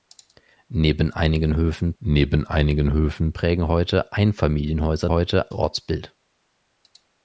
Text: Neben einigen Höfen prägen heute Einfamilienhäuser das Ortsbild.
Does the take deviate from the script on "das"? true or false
true